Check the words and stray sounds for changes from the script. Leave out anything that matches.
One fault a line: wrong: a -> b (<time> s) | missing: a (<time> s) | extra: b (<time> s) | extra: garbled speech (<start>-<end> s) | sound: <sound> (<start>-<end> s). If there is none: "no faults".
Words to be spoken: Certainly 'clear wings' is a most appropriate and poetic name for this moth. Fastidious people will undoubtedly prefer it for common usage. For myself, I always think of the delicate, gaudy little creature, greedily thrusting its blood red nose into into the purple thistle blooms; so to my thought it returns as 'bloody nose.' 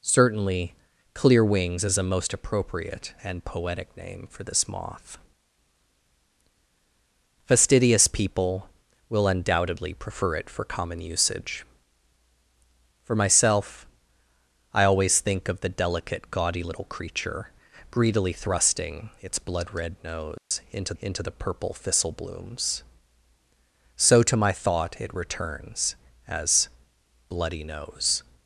sound: dropout (20.4-20.5 s)